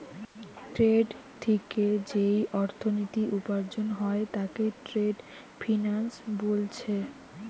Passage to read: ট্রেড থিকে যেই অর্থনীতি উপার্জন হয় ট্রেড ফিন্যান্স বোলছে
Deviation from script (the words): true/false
true